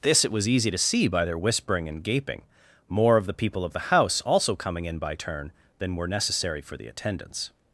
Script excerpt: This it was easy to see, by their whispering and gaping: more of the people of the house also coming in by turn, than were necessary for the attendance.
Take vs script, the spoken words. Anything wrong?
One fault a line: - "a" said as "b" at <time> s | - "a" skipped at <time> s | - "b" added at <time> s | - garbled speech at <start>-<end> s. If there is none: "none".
none